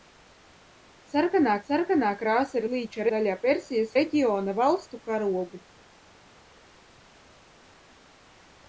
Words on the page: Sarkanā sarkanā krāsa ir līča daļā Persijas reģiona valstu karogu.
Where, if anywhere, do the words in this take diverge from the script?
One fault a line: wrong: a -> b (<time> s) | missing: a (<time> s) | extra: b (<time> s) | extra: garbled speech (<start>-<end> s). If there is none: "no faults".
no faults